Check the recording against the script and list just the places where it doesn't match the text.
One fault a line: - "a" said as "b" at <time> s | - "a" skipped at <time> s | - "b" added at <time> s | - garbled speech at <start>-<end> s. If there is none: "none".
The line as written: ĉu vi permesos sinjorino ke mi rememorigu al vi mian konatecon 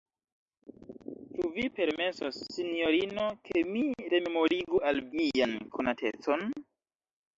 - "vi" skipped at 5.0 s